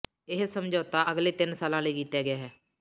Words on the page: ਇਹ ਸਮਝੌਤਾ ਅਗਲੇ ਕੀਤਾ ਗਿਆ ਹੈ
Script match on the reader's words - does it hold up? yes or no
no